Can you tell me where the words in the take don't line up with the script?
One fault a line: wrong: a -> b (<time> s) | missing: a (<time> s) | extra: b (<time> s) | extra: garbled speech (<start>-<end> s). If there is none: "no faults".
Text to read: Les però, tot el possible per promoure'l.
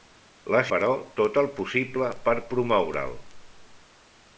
no faults